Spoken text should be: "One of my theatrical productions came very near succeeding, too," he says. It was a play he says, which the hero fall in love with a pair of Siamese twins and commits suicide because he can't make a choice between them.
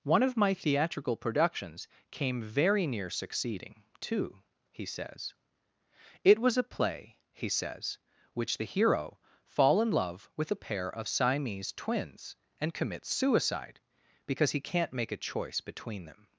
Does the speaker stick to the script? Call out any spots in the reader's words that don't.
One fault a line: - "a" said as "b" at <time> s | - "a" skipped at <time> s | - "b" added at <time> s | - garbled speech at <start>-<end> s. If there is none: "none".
none